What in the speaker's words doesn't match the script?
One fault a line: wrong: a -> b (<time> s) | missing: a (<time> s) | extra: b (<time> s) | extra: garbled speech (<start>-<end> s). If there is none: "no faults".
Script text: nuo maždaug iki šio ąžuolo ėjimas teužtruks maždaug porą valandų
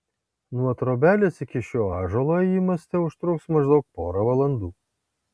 wrong: maždaug -> trobelės (0.8 s)